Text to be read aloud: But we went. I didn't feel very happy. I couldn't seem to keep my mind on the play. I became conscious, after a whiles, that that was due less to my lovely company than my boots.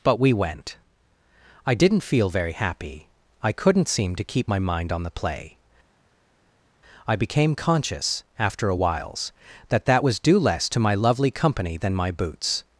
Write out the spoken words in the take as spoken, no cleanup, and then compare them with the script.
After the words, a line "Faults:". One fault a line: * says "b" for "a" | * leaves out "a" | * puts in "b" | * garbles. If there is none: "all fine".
But we went. I didn't feel very happy. I couldn't seem to keep my mind on the play. I became conscious, after a whiles, that that was due less to my lovely company than my boots.
Faults:
all fine